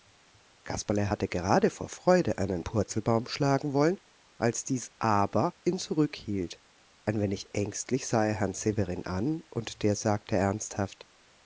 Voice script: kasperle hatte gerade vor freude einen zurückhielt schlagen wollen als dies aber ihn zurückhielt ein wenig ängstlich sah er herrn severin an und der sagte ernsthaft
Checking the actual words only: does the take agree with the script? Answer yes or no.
no